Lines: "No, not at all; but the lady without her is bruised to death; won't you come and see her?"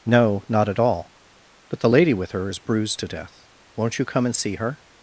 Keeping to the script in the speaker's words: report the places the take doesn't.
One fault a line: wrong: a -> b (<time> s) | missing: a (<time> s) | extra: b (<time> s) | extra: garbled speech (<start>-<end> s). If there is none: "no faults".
wrong: without -> with (2.1 s)